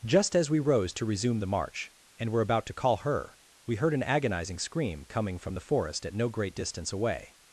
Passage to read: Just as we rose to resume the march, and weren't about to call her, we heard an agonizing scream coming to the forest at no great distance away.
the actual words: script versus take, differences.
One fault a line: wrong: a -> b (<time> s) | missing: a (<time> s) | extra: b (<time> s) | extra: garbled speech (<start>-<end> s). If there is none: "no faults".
wrong: weren't -> were (2.3 s)
wrong: to -> from (5.4 s)